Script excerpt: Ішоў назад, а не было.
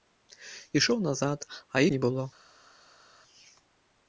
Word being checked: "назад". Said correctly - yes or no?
yes